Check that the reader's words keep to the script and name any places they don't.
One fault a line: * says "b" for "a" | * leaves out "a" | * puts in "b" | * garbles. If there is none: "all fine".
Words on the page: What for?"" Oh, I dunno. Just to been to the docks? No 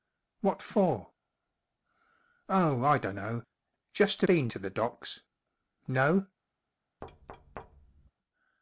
all fine